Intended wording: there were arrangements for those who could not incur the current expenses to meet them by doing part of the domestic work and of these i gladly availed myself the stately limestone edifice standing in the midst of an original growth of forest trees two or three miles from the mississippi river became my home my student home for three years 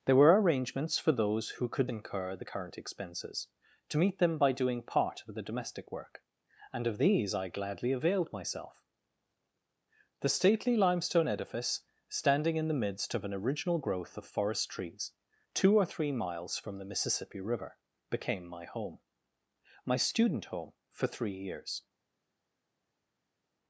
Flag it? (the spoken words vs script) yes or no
yes